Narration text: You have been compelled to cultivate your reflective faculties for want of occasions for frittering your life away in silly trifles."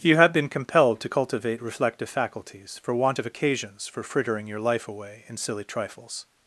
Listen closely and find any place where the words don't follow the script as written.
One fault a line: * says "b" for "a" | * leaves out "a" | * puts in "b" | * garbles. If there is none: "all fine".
* leaves out "your"